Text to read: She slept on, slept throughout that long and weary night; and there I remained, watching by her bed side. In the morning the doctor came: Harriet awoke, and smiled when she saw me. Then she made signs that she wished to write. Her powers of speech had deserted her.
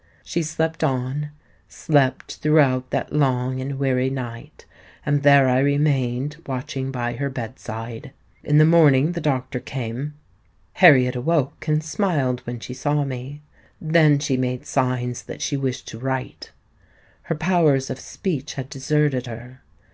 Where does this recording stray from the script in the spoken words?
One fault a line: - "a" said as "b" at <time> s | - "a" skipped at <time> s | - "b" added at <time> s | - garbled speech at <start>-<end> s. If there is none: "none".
none